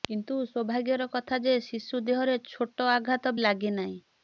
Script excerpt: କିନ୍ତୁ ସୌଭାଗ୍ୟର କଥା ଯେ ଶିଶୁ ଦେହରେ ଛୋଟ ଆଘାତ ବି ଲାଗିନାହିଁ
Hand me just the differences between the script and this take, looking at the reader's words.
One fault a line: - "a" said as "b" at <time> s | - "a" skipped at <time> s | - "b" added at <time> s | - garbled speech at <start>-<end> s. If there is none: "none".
- "ବି" skipped at 3.4 s